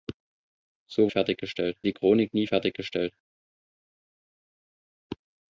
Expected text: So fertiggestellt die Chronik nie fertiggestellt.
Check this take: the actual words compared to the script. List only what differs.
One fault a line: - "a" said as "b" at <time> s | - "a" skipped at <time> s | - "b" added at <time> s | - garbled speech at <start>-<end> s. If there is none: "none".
none